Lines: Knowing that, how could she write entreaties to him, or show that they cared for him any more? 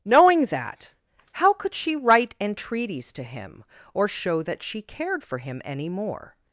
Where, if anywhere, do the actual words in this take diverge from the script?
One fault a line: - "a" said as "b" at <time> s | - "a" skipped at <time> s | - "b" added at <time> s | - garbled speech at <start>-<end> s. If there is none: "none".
- "they" said as "she" at 4.6 s